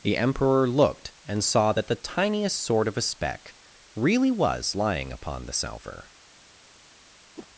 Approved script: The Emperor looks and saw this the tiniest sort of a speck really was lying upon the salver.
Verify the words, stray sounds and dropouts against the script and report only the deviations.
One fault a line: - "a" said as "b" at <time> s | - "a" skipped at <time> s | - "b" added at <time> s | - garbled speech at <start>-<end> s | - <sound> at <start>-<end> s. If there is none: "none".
- "looks" said as "looked" at 0.7 s
- "this" said as "that" at 1.7 s
- whoosh at 7.4-7.5 s